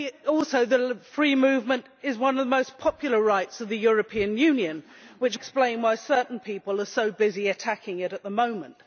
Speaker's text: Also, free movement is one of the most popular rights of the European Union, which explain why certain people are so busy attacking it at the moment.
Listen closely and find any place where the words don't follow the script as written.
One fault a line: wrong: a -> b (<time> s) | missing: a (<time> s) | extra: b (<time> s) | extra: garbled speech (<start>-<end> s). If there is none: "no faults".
no faults